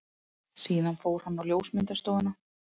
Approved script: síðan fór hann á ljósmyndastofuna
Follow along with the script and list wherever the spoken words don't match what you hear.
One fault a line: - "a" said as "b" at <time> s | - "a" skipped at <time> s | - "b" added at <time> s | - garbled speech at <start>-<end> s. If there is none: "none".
none